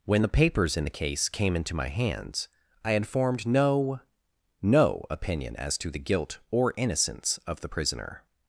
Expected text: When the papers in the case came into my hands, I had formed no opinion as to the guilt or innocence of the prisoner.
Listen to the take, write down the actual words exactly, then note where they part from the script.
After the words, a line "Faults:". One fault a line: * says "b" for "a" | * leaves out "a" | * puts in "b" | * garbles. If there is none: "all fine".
When the papers in the case came into my hands, I had formed no no opinion as to the guilt or innocence of the prisoner.
Faults:
* puts in "no"